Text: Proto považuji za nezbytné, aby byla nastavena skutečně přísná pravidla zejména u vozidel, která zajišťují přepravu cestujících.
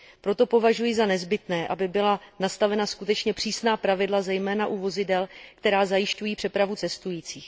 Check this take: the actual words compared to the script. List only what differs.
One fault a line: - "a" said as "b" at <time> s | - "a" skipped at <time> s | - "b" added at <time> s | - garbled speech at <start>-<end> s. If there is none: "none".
none